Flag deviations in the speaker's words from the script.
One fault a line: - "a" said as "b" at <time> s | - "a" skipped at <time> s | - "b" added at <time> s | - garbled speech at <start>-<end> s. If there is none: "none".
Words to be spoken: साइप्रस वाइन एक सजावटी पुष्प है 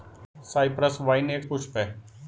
- "सजावटी" skipped at 1.4 s